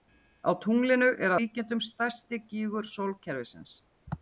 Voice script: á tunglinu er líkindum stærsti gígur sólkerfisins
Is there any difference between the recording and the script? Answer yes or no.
no